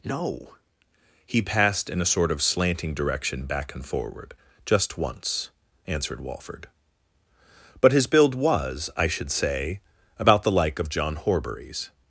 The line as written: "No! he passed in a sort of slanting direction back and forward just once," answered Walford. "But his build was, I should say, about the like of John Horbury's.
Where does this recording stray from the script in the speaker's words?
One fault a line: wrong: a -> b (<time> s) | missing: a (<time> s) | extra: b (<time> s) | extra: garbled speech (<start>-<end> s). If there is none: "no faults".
no faults